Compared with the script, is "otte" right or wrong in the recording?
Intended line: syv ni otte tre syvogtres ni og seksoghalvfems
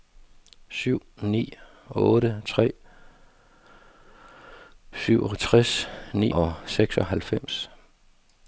right